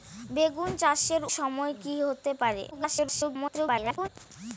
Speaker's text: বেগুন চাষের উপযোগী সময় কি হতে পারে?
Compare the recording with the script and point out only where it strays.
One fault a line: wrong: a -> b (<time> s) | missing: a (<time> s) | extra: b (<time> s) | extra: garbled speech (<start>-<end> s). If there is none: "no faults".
missing: উপযোগী (1.2 s)
extra: garbled speech (2.7-4.1 s)